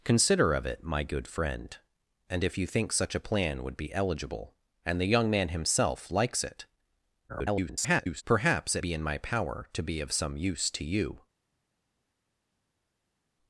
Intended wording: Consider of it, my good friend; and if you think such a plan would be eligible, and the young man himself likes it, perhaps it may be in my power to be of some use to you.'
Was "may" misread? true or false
true